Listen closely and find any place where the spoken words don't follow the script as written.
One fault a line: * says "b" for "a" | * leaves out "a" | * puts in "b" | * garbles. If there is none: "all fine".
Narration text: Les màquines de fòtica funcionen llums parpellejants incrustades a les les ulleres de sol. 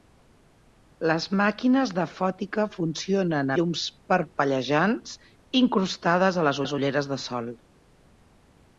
all fine